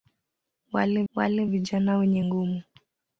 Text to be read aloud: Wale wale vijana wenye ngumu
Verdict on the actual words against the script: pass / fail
pass